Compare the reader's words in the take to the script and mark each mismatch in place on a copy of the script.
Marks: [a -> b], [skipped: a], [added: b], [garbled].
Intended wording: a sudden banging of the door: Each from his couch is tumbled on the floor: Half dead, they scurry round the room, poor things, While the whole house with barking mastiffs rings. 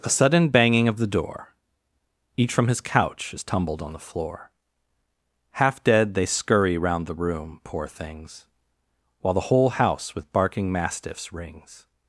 a sudden banging of the door: Each from his couch is tumbled on the floor: Half dead, they scurry round the room, poor things, While the whole house with barking mastiffs rings.